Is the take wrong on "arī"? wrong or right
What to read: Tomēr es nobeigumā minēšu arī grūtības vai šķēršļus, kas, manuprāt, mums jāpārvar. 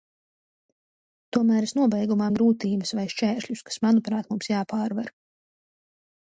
wrong